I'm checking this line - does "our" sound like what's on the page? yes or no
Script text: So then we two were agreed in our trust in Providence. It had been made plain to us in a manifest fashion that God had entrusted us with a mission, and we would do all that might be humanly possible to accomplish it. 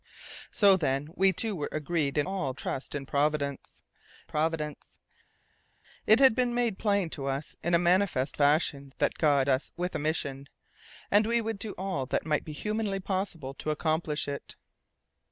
no